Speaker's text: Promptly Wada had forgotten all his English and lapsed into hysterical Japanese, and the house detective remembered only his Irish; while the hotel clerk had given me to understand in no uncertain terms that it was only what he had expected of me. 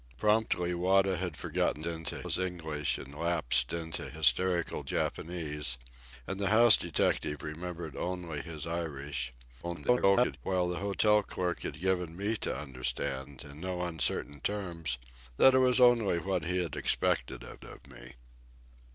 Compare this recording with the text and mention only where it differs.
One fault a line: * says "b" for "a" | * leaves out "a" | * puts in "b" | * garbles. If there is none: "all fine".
* says "into" for "all"
* garbles
* puts in "of"